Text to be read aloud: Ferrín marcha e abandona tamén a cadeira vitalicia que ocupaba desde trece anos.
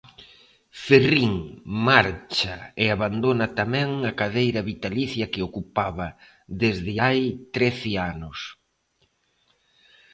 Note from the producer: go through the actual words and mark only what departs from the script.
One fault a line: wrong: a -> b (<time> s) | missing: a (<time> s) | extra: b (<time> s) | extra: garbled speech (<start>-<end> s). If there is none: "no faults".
extra: hai (7.0 s)